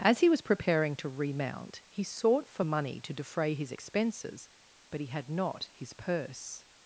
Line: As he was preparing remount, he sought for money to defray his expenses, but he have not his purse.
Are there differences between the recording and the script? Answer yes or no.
yes